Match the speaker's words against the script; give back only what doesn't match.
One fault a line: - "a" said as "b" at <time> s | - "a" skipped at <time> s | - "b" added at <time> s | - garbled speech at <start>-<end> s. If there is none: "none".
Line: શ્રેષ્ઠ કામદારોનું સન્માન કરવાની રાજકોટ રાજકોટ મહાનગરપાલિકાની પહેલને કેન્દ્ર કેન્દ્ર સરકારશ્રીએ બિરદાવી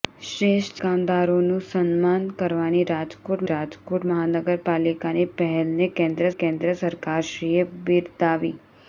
none